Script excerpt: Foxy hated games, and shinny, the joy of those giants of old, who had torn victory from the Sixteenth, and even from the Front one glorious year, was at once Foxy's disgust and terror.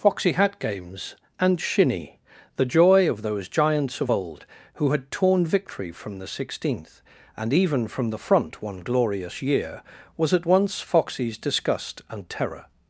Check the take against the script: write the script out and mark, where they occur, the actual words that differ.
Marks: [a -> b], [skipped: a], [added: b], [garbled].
Foxy [hated -> hat] games, and shinny, the joy of those giants of old, who had torn victory from the Sixteenth, and even from the Front one glorious year, was at once Foxy's disgust and terror.